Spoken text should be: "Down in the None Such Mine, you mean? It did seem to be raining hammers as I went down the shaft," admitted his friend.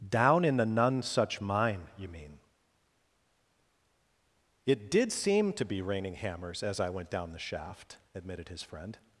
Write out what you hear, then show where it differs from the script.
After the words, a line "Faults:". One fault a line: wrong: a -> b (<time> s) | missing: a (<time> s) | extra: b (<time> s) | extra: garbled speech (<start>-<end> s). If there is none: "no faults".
"Down in the None Such Mine, you mean? It did seem to be raining hammers as I went down the shaft," admitted his friend.
Faults:
no faults